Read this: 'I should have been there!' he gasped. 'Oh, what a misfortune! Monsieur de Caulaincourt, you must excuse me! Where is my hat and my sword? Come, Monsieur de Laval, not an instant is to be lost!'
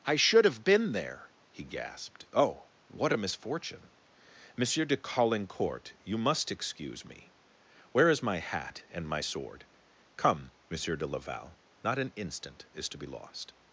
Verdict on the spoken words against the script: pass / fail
pass